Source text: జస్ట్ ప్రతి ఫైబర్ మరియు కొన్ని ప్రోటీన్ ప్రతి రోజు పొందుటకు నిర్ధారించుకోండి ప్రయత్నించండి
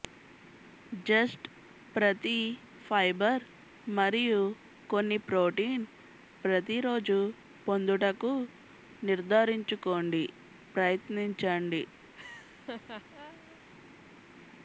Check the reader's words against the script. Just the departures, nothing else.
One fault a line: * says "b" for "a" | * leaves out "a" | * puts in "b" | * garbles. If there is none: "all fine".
all fine